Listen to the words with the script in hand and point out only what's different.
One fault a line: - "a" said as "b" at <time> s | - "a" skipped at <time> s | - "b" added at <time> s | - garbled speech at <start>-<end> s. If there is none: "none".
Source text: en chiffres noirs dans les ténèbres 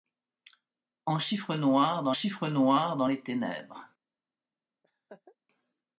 - "chiffres noirs dans" added at 2.1 s